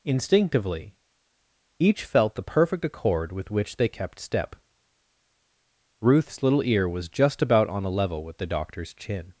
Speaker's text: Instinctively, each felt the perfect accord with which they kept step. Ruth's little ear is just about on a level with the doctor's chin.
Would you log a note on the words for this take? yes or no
yes